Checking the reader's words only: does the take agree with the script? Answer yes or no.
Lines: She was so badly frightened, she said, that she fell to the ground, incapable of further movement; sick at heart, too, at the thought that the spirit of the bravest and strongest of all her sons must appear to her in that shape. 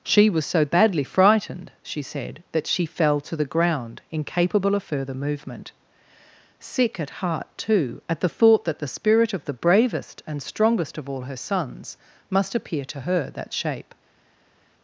no